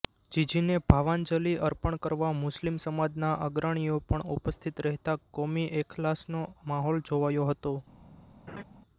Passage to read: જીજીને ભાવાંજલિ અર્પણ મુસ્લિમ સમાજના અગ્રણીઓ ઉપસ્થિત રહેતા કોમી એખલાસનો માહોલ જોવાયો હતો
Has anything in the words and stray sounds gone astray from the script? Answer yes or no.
yes